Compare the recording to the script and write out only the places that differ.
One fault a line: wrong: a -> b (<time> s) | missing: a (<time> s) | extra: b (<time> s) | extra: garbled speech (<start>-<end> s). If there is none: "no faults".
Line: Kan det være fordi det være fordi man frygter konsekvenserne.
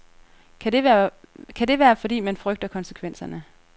missing: det være fordi (2.2 s)